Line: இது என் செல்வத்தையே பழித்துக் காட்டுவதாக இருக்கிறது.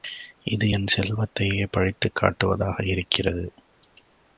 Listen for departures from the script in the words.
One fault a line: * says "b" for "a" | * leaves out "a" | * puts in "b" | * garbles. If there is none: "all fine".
all fine